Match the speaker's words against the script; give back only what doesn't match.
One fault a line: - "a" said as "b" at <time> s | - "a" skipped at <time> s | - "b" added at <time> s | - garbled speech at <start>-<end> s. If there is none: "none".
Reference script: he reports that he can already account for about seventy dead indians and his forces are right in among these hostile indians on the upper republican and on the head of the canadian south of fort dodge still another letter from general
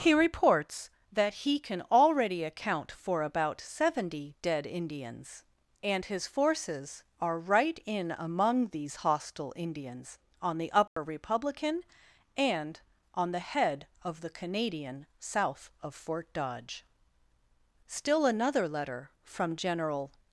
none